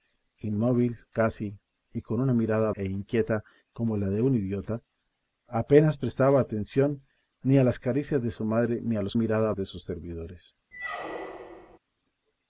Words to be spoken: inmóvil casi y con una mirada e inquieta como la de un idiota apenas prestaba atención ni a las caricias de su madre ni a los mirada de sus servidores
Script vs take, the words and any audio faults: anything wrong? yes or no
yes